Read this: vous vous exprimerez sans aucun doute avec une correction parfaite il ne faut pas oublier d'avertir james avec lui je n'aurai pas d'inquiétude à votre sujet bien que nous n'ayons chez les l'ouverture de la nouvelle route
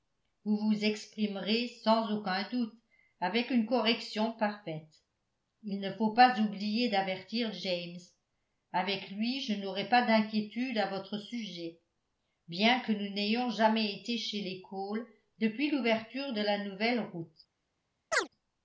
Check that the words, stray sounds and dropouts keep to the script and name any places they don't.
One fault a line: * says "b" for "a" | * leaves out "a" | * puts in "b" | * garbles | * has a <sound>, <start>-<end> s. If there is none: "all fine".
* puts in "jamais été"
* puts in "cole depuis"
* has a chirp, 18.1-18.3 s